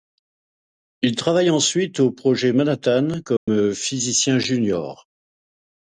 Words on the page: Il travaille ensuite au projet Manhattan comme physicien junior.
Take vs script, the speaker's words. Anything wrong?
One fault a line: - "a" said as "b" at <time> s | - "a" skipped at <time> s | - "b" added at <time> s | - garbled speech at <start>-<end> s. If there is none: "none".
none